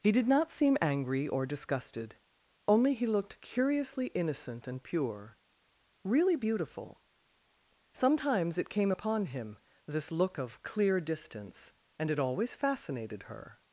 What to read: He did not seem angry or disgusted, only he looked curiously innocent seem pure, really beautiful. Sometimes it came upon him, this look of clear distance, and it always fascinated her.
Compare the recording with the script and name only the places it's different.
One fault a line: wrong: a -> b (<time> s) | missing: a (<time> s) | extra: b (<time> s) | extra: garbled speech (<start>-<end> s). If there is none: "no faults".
wrong: seem -> and (4.7 s)